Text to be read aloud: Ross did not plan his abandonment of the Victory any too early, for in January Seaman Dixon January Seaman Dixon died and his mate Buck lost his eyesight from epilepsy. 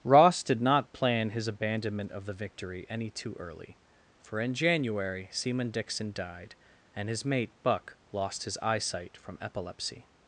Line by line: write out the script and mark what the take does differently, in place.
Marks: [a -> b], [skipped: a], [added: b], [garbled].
Ross did not plan his abandonment of the Victory any too early, for in January Seaman Dixon [skipped: January Seaman Dixon] died and his mate Buck lost his eyesight from epilepsy.